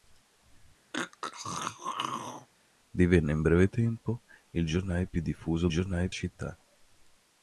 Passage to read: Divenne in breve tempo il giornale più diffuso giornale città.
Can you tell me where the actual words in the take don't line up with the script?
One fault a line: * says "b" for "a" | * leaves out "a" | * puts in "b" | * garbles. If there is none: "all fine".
all fine